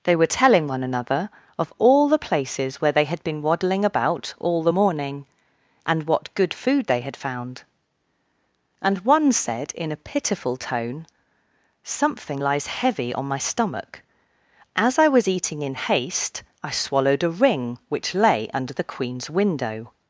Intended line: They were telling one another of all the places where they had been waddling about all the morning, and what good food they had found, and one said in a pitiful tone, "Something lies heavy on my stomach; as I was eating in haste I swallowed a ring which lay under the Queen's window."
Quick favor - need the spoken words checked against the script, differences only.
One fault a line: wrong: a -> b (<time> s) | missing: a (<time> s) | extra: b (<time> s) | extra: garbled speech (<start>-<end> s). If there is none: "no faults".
no faults